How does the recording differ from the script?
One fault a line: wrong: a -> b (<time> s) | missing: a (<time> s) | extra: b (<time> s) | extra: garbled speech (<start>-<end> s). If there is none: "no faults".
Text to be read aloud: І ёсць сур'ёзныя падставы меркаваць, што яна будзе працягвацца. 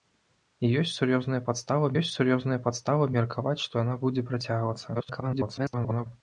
extra: ёсць сур'ёзныя падставы (2.0 s)
extra: garbled speech (4.9-6.1 s)